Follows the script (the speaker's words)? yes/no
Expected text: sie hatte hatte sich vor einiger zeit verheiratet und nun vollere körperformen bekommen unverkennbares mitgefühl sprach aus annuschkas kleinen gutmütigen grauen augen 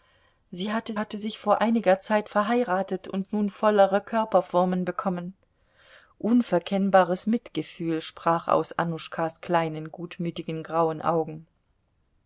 yes